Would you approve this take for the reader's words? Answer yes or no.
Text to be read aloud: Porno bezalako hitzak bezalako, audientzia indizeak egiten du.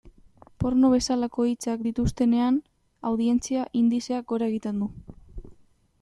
no